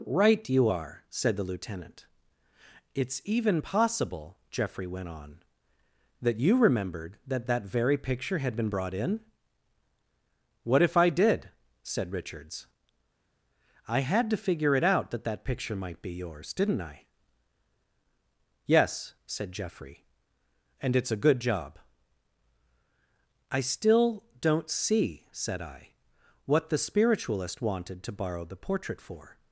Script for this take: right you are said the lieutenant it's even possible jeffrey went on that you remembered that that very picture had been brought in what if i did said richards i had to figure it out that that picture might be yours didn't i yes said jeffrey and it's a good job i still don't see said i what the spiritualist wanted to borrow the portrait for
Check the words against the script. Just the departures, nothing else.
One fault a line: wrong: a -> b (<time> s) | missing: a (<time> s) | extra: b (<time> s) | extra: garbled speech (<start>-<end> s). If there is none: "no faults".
no faults